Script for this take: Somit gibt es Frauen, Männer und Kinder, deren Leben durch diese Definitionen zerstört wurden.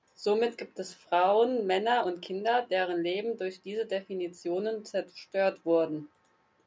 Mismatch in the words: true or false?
false